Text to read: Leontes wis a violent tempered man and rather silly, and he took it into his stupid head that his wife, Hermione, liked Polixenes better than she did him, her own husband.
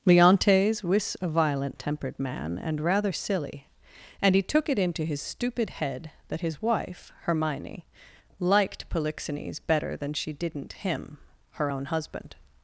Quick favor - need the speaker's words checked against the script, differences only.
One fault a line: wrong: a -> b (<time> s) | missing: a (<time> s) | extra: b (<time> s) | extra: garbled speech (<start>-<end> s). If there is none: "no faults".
wrong: did -> didn't (10.3 s)